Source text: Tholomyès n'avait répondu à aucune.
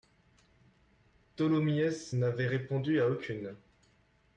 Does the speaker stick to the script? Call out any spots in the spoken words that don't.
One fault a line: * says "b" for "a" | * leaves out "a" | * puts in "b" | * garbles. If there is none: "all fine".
all fine